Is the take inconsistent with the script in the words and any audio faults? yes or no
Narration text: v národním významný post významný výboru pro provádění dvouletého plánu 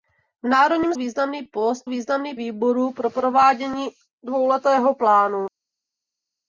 no